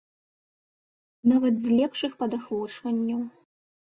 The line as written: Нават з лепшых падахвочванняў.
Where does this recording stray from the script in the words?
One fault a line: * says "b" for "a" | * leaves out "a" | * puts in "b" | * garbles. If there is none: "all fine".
all fine